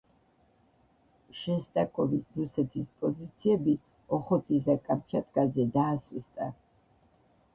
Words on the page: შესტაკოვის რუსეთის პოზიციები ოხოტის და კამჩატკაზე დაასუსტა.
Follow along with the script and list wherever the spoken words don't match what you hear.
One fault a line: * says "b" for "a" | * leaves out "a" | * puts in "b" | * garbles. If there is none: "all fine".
all fine